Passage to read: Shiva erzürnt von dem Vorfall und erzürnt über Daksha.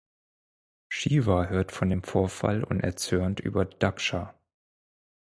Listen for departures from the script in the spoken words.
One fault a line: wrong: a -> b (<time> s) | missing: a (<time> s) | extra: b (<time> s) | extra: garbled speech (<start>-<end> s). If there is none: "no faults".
wrong: erzürnt -> hört (1.4 s)